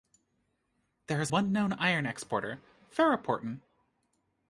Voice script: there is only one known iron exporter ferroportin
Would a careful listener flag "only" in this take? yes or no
yes